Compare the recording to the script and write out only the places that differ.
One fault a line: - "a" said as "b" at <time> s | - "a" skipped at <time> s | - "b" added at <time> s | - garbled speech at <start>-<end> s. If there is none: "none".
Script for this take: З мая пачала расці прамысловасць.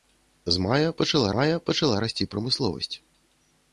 - "мая пачала" added at 1.3 s